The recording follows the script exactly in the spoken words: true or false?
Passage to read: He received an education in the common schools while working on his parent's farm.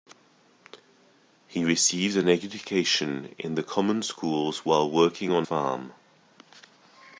false